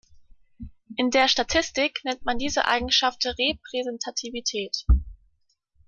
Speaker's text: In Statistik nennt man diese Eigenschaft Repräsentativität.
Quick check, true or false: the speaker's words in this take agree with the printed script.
false